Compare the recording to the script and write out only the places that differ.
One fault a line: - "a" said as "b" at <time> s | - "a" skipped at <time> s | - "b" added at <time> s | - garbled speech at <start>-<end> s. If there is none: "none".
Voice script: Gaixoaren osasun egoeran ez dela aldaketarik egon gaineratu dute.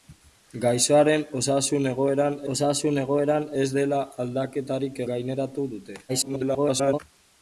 - "osasun egoeran" added at 2.5 s
- "egon" skipped at 5.1 s
- garbled speech at 6.1-7.0 s